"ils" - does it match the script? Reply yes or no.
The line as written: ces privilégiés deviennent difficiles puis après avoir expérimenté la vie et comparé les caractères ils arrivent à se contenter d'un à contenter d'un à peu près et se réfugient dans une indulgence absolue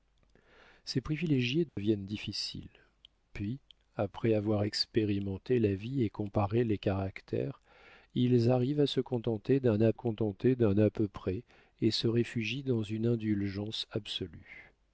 yes